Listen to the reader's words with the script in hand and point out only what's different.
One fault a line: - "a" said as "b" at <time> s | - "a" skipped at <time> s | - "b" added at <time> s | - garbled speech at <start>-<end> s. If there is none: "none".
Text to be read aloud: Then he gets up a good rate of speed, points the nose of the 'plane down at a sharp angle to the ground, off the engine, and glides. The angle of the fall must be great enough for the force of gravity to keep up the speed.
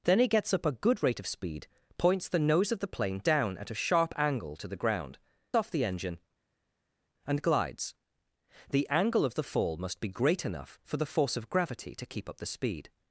none